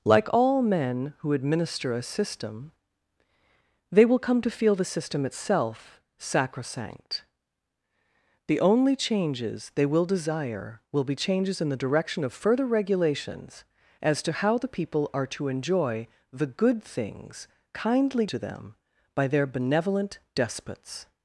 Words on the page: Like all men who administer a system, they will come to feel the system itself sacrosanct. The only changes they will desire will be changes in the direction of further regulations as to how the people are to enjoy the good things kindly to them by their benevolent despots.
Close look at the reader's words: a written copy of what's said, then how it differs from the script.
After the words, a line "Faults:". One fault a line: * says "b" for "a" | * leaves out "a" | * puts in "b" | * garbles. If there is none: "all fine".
Like all men who administer a system, they will come to feel the system itself sacrosanct. The only changes they will desire will be changes in the direction of further regulations as to how the people are to enjoy the good things kindly to them by their benevolent despots.
Faults:
all fine